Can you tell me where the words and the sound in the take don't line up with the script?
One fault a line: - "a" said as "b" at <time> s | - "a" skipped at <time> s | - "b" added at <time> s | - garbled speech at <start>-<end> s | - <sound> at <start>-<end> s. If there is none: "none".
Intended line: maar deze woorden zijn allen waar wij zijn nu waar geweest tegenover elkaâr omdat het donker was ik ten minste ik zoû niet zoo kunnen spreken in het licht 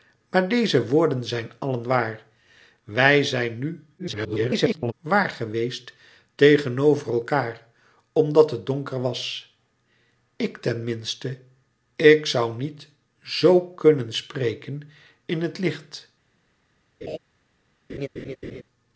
- garbled speech at 4.0-4.9 s
- laugh at 17.0-17.2 s
- laugh at 17.9-18.6 s